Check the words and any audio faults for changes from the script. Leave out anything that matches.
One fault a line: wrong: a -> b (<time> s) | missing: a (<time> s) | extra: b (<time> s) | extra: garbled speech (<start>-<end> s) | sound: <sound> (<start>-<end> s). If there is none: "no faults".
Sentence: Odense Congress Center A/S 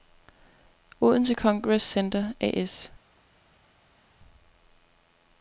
no faults